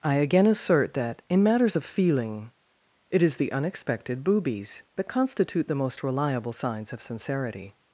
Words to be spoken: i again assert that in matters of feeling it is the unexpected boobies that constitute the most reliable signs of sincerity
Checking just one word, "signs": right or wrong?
right